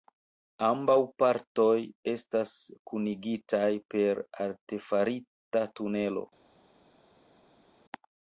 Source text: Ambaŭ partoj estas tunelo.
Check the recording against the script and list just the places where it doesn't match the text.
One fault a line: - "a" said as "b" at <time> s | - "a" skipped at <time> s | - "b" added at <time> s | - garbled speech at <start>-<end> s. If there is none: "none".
- "kunigitaj per artefarita" added at 2.9 s